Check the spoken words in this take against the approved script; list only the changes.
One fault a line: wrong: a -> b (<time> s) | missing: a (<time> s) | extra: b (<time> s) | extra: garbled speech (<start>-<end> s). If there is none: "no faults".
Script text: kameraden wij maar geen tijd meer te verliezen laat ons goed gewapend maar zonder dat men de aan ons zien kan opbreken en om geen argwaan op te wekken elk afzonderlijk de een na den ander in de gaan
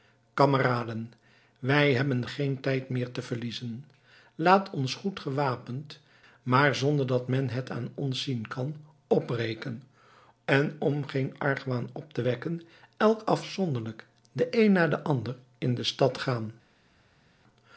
wrong: maar -> hebben (1.9 s)
wrong: de -> het (7.5 s)
extra: stad (15.8 s)